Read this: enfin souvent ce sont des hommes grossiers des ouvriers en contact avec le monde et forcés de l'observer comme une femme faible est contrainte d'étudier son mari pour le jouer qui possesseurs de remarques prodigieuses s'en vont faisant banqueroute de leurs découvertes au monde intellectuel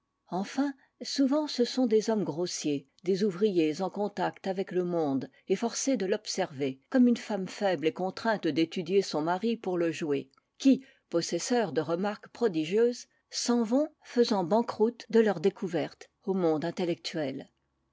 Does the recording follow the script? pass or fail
pass